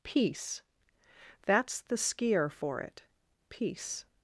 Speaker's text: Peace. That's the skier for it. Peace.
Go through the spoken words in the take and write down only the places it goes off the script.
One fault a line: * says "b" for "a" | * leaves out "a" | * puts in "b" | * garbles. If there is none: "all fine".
all fine